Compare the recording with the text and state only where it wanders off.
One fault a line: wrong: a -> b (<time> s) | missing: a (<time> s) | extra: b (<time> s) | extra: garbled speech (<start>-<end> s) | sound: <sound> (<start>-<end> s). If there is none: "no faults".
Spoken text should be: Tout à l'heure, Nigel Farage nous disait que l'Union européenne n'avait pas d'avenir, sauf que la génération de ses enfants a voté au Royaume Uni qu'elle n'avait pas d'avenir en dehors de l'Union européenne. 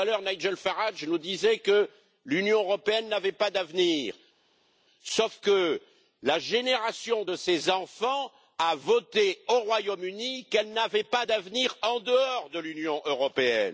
no faults